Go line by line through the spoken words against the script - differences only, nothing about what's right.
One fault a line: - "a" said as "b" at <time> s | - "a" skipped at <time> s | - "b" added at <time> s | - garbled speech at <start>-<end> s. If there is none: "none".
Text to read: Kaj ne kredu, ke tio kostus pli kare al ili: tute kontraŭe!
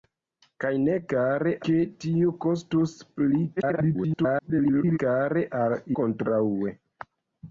- "kredu" said as "kare" at 1.2 s
- garbled speech at 3.6-5.0 s
- "ili tute" skipped at 5.8 s